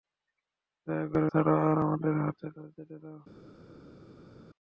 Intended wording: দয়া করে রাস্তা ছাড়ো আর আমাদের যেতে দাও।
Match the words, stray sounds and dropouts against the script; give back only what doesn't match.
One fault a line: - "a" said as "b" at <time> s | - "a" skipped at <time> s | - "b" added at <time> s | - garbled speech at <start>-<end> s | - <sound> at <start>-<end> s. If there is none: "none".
- "রাস্তা" skipped at 1.3 s